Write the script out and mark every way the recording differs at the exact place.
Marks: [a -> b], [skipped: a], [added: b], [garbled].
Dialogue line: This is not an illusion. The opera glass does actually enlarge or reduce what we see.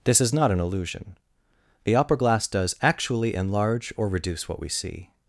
This is not an illusion. The opera glass does actually enlarge or reduce what we see.